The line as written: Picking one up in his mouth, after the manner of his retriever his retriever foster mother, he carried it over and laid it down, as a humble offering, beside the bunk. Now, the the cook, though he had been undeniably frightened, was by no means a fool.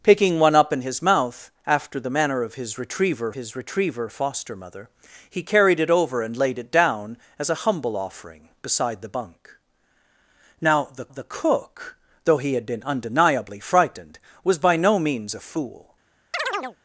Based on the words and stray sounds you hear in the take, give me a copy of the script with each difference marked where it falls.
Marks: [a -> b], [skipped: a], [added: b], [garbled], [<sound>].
Picking one up in his mouth, after the manner of his retriever his retriever foster mother, he carried it over and laid it down, as a humble offering, beside the bunk. Now, the the cook, though he had been undeniably frightened, was by no means a fool. [chirp]